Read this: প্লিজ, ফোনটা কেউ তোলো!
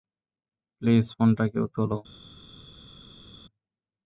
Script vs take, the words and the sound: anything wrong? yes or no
no